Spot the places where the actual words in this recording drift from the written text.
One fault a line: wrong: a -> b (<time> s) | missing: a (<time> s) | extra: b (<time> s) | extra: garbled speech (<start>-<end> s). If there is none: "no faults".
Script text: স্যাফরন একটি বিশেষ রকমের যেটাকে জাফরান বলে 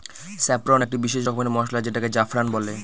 extra: মসলা (1.5 s)